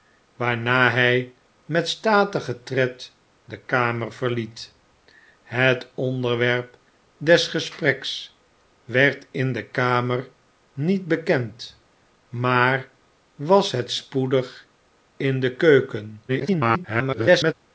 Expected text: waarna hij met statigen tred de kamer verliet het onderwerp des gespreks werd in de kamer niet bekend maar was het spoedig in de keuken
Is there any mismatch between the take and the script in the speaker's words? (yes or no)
yes